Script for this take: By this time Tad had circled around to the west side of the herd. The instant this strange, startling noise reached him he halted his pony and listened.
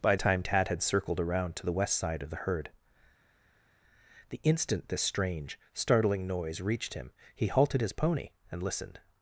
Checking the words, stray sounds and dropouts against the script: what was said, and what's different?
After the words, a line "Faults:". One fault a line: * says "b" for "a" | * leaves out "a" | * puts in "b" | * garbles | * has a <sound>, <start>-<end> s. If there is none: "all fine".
By time Tad had circled around to the west side of the herd. The instant this strange, startling noise reached him he halted his pony and listened.
Faults:
* leaves out "this"